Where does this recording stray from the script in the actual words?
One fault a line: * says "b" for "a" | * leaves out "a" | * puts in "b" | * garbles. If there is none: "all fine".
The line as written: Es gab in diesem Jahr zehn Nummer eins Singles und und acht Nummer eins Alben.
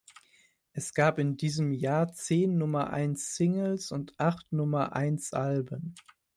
* leaves out "und"